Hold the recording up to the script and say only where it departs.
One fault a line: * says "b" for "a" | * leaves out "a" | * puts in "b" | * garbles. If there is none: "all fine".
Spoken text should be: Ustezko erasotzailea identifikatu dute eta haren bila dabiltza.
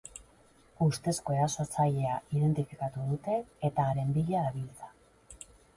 all fine